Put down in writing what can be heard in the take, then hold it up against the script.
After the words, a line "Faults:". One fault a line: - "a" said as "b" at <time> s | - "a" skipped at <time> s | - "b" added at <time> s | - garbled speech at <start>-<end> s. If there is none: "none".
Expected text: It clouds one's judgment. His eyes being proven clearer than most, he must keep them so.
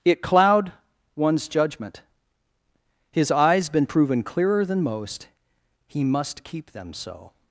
It cloud one's judgment. His eyes been proven clearer than most, he must keep them so.
Faults:
- "clouds" said as "cloud" at 0.2 s
- "being" said as "been" at 3.7 s